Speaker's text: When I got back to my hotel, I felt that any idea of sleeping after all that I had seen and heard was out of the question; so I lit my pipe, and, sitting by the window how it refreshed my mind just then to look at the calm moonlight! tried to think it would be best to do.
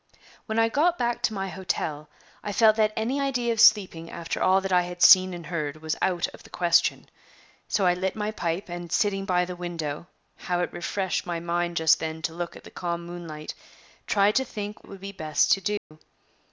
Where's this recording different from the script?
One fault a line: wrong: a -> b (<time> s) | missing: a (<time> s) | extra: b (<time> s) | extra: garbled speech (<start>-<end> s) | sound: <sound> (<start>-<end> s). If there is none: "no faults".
sound: dropout (15.8-15.9 s)